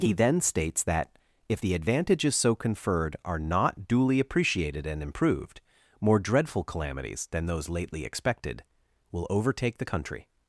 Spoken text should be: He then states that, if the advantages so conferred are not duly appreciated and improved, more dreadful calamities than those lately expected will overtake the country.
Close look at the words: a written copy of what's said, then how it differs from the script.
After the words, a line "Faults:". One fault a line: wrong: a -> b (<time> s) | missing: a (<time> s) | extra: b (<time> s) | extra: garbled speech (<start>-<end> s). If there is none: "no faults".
He then states that, if the advantages so conferred are not duly appreciated and improved, more dreadful calamities than those lately expected will overtake the country.
Faults:
no faults